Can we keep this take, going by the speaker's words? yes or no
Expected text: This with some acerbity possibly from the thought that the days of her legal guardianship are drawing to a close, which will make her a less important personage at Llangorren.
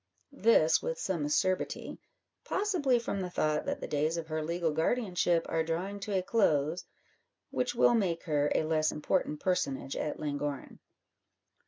yes